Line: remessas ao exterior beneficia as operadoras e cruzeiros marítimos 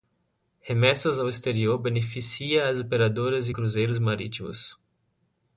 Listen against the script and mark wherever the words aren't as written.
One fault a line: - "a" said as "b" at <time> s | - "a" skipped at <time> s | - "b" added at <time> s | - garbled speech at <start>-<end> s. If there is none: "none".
none